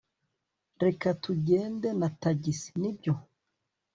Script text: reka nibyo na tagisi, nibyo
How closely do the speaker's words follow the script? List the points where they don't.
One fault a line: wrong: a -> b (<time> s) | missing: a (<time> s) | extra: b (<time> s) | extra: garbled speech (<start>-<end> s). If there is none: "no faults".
wrong: nibyo -> tugende (1.2 s)